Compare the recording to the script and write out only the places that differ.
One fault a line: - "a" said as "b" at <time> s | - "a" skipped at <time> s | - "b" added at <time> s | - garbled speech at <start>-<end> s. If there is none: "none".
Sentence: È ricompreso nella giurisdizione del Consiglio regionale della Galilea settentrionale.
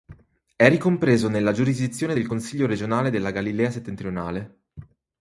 none